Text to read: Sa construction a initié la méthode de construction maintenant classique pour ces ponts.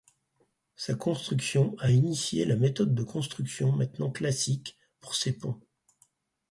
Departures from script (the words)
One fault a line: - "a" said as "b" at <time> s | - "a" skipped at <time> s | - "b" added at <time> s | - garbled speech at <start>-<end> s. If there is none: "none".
none